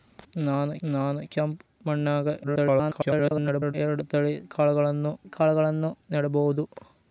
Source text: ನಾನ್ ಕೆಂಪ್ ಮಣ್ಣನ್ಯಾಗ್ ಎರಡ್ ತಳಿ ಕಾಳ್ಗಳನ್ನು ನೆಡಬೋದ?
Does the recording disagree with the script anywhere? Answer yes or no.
yes